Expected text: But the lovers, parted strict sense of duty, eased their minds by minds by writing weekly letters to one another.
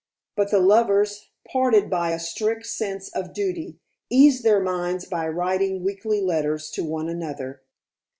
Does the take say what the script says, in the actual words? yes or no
no